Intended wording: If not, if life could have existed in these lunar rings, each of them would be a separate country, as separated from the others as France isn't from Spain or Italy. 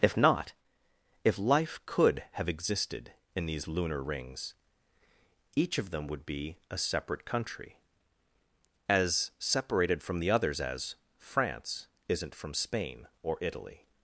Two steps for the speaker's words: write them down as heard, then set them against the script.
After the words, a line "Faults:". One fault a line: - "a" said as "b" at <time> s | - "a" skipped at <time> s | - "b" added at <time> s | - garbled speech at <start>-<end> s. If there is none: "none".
If not, if life could have existed in these lunar rings, each of them would be a separate country, as separated from the others as France isn't from Spain or Italy.
Faults:
none